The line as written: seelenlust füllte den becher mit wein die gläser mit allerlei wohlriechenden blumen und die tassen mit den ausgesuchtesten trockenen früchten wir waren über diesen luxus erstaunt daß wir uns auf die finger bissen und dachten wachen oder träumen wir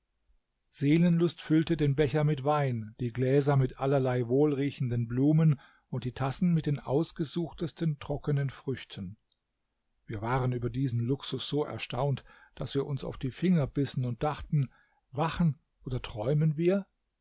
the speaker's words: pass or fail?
fail